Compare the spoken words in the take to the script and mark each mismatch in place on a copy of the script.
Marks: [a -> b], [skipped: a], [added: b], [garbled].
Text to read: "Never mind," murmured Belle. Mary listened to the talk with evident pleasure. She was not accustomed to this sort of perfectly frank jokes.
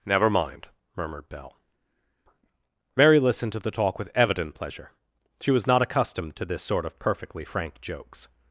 "Never mind," murmured Belle. Mary listened to the talk with evident pleasure. She was not accustomed to this sort of perfectly frank jokes.